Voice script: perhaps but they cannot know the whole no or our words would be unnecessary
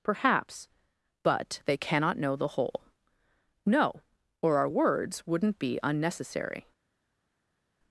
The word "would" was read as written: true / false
false